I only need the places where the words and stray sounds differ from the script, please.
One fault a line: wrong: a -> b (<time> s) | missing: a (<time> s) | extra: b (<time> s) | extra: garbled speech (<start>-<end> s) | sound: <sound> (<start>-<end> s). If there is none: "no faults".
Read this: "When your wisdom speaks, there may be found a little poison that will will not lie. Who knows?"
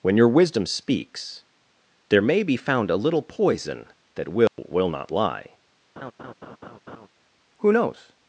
sound: dropout (4.5-4.6 s)
sound: laugh (6.0-7.1 s)